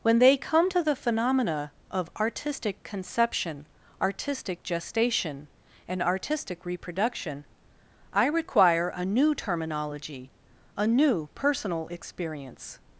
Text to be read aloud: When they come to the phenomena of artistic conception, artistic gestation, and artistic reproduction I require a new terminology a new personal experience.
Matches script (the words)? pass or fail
pass